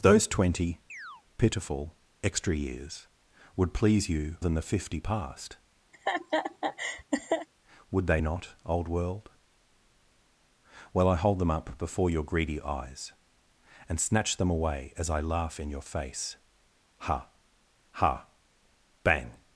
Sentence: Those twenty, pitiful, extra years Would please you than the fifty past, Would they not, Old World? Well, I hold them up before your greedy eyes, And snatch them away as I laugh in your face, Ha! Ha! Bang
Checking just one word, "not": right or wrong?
right